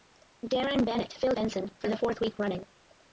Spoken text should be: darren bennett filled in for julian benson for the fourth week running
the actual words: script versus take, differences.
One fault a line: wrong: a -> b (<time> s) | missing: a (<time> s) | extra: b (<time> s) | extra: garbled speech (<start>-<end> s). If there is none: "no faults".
missing: in for julian (1.4 s)